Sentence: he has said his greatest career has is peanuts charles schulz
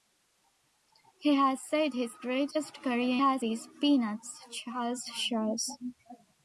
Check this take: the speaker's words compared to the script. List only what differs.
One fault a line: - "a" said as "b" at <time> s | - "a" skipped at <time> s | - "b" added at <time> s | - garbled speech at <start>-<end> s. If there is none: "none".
none